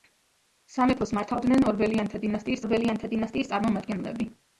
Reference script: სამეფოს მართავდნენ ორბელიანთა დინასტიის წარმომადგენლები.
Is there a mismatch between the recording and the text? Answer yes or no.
yes